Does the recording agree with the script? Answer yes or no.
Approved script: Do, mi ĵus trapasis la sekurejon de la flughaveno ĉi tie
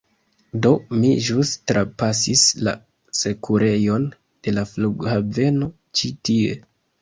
yes